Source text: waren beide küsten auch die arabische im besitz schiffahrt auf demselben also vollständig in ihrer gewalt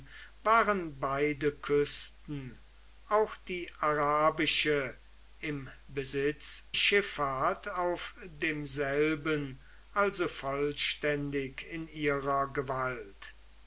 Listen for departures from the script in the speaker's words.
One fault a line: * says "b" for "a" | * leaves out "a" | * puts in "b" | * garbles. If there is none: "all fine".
all fine